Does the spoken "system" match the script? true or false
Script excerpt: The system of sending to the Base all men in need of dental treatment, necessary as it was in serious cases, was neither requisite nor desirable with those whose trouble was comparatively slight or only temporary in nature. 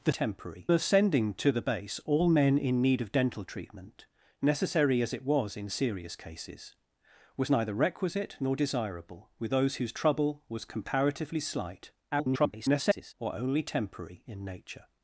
false